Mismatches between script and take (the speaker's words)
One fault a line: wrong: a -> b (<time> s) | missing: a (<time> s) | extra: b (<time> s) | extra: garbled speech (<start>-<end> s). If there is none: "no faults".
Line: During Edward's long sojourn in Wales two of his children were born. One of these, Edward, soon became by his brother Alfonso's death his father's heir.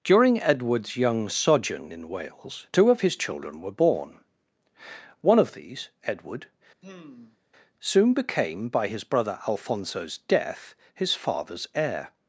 wrong: long -> young (1.0 s)